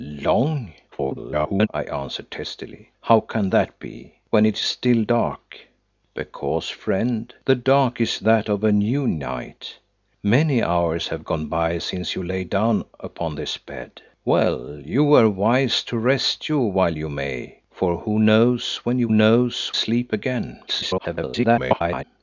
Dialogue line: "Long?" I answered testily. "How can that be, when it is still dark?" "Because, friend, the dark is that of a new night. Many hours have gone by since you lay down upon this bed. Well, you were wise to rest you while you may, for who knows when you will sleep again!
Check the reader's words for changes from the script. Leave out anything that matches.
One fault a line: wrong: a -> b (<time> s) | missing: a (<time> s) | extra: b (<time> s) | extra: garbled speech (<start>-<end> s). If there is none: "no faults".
extra: garbled speech (0.9-1.7 s)
wrong: will -> knows (19.1 s)
extra: garbled speech (20.7-22.0 s)